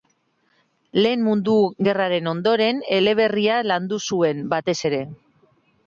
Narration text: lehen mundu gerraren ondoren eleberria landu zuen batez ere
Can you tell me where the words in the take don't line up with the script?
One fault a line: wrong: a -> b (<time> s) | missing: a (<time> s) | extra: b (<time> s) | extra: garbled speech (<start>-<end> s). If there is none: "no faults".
no faults